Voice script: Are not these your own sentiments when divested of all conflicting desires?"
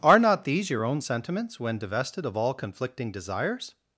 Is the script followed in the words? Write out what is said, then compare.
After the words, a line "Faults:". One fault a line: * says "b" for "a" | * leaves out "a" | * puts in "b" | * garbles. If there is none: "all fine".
Are not these your own sentiments when divested of all conflicting desires?"
Faults:
all fine